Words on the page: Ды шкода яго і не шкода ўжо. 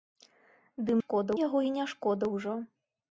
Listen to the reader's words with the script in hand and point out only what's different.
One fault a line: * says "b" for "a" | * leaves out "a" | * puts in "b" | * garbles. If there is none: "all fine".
all fine